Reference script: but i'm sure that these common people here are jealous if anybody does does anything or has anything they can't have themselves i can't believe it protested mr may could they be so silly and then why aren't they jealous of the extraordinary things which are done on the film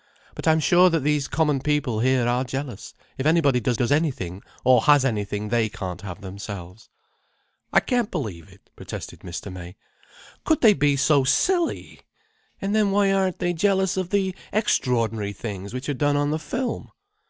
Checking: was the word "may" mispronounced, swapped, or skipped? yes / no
no